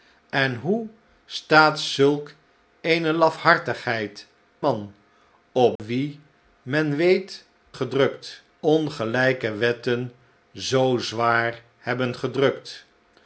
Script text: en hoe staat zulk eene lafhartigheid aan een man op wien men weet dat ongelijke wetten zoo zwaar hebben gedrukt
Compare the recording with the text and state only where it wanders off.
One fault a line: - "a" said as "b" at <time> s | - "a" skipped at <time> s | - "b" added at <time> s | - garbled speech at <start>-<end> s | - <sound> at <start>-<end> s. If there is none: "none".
- "aan een" skipped at 4.3 s
- dropout at 5.8-5.8 s
- "dat" said as "gedrukt" at 7.7 s